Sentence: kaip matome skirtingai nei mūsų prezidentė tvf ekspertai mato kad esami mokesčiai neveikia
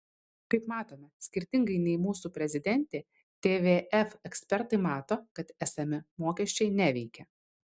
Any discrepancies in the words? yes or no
no